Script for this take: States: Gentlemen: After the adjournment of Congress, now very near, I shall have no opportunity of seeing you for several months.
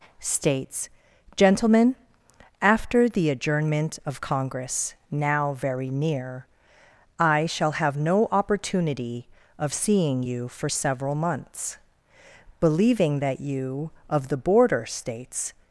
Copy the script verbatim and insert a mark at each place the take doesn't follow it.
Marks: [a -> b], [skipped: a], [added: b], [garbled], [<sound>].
States: Gentlemen: After the adjournment of Congress, now very near, I shall have no opportunity of seeing you for several months. [added: Believing that you of the border States]